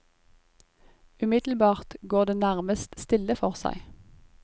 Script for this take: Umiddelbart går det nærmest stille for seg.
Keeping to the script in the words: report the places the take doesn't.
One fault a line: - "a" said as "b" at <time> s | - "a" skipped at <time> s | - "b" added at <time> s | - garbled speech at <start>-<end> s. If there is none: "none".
none